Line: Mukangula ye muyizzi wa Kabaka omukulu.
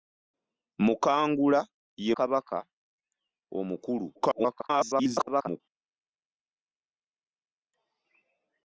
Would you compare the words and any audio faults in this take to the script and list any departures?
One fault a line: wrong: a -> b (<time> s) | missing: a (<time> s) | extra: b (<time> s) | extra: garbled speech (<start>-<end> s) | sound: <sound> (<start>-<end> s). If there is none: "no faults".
missing: muyizzi wa (2.1 s)
extra: garbled speech (4.1-5.6 s)